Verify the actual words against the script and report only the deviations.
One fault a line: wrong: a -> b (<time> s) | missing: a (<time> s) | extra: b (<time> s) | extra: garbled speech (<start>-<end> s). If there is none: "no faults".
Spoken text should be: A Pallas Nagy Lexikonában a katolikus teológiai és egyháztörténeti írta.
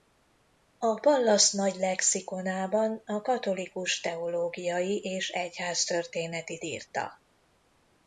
no faults